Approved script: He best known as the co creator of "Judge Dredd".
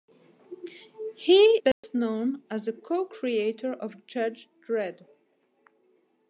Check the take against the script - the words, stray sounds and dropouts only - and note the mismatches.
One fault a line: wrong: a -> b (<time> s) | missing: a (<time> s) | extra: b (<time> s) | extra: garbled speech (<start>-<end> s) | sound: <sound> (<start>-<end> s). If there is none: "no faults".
sound: dropout (1.7-1.8 s)